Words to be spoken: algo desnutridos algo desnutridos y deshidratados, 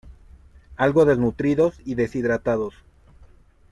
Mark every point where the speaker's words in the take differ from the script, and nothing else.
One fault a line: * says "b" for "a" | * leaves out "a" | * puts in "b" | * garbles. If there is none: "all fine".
* leaves out "algo desnutridos"